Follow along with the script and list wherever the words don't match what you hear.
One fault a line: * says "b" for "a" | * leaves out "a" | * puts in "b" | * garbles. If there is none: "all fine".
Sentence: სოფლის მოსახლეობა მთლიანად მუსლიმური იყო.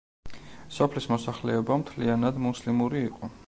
all fine